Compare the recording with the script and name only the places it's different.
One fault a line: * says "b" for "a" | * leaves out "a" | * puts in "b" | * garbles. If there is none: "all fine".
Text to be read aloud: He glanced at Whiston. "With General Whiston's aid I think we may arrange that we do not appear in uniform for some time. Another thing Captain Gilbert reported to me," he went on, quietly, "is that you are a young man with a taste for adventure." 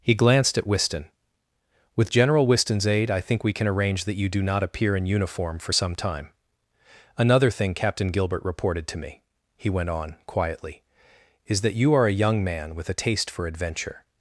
* says "can" for "may"
* says "you" for "we"